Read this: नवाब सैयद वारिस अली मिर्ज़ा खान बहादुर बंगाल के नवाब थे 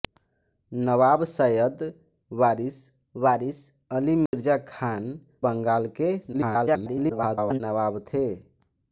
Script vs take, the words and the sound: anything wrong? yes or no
yes